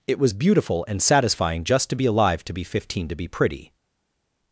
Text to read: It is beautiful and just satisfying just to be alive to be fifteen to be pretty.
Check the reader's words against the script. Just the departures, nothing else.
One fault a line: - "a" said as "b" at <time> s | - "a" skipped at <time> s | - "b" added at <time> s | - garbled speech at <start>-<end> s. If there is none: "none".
- "is" said as "was" at 0.2 s
- "just" skipped at 1.0 s